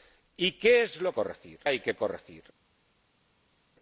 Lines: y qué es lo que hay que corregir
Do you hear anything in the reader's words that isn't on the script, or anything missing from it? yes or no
yes